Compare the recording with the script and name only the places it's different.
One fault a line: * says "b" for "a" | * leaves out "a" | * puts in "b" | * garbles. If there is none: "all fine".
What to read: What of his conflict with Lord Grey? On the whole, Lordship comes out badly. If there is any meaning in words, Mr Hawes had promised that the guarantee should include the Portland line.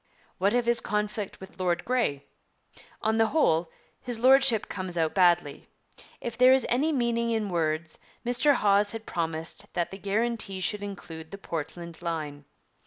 * puts in "his"